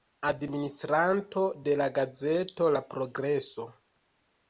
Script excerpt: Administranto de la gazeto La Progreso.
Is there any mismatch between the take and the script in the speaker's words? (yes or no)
no